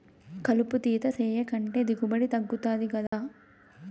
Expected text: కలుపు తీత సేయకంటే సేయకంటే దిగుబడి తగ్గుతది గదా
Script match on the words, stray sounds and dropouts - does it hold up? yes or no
no